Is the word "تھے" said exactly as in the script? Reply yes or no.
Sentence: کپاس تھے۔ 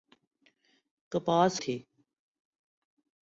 yes